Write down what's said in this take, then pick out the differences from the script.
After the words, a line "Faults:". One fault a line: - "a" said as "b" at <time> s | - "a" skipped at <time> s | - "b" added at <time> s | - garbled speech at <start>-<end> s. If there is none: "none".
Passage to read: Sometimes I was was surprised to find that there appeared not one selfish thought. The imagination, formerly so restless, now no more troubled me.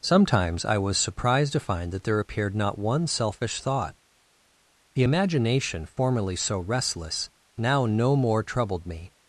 Sometimes I was surprised to find that there appeared not one selfish thought. The imagination, formerly so restless, now no more troubled me.
Faults:
- "was" skipped at 1.0 s